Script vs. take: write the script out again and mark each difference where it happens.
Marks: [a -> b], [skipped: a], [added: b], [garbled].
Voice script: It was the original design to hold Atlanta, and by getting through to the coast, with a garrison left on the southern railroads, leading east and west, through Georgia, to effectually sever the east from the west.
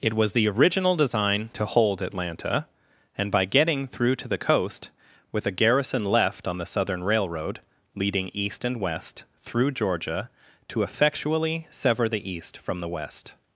It was the original design to hold Atlanta, and by getting through to the coast, with a garrison left on the southern [railroads, -> railroad] leading east and west, through Georgia, to effectually sever the east from the west.